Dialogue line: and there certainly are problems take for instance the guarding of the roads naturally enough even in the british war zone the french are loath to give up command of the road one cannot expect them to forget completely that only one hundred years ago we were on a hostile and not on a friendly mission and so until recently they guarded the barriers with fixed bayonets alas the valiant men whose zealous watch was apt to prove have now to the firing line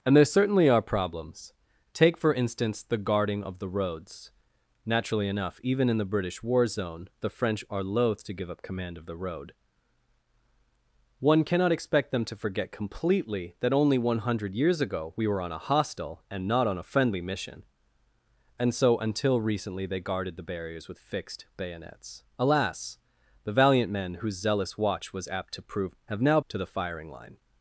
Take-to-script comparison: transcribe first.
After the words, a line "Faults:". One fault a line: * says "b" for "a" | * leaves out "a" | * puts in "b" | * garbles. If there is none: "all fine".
and there certainly are problems take for instance the guarding of the roads naturally enough even in the british war zone the french are loath to give up command of the road one cannot expect them to forget completely that only one hundred years ago we were on a hostile and not on a friendly mission and so until recently they guarded the barriers with fixed bayonets alas the valiant men whose zealous watch was apt to prove have now to the firing line
Faults:
all fine